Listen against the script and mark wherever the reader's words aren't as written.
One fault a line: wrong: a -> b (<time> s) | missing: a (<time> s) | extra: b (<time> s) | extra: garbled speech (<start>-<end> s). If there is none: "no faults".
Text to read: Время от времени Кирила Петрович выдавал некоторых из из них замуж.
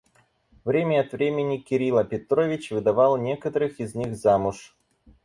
missing: из (3.9 s)